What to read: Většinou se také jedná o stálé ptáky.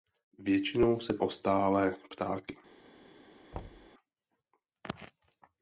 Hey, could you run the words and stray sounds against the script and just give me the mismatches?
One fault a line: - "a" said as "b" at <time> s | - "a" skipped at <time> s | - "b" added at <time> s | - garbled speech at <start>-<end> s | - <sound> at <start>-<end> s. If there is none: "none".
- "také jedná" skipped at 1.2 s
- thud at 3.5-3.9 s